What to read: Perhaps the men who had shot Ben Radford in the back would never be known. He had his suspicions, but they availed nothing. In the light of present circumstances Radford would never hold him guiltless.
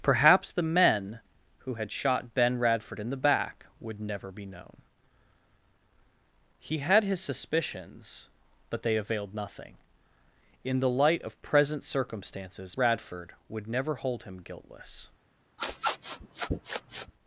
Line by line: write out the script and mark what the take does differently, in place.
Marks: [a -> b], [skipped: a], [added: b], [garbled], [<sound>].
Perhaps the men who had shot Ben Radford in the back would never be known. He had his suspicions, but they availed nothing. In the light of present circumstances Radford would never hold him guiltless. [sniff]